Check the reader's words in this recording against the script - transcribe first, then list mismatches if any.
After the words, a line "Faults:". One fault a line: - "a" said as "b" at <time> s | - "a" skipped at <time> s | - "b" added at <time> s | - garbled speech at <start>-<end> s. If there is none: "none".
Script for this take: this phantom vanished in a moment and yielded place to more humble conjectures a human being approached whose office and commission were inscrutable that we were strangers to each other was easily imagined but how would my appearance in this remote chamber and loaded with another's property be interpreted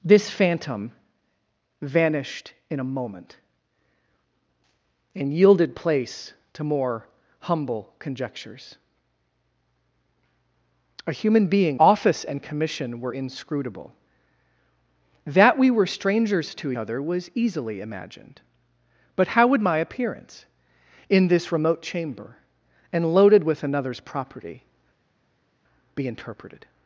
this phantom vanished in a moment and yielded place to more humble conjectures a human being office and commission were inscrutable that we were strangers to other was easily imagined but how would my appearance in this remote chamber and loaded with another's property be interpreted
Faults:
- "approached whose" skipped at 11.8 s
- "each" skipped at 16.7 s